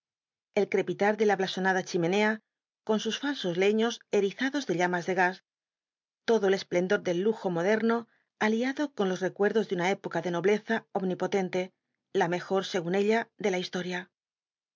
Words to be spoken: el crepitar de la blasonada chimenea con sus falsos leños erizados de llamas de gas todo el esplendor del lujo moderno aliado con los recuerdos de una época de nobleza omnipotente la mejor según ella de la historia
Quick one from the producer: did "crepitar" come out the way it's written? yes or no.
yes